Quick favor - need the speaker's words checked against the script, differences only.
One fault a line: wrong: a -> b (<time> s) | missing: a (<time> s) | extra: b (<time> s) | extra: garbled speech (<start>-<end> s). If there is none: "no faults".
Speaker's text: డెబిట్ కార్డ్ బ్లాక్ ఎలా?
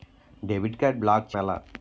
no faults